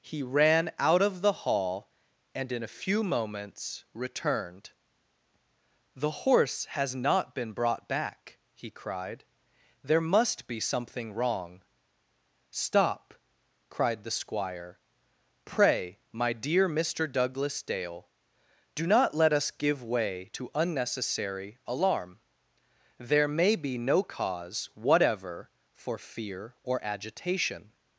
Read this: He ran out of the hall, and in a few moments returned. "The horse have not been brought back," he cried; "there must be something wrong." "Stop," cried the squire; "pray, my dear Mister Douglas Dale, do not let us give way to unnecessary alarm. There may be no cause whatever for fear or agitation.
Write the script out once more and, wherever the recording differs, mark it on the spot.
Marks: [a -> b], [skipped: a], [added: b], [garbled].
He ran out of the hall, and in a few moments returned. "The horse [have -> has] not been brought back," he cried; "there must be something wrong." "Stop," cried the squire; "pray, my dear Mister Douglas Dale, do not let us give way to unnecessary alarm. There may be no cause whatever for fear or agitation.